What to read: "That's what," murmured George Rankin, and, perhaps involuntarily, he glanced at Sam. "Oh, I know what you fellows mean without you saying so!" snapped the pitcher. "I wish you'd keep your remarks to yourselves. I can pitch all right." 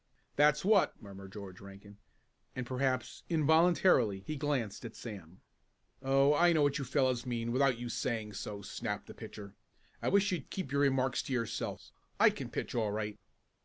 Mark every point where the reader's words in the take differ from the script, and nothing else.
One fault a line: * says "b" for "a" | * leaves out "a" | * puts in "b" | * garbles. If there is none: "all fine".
all fine